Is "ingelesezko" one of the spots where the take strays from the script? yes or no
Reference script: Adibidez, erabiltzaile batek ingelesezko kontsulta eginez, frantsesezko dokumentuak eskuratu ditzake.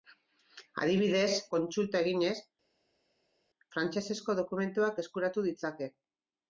yes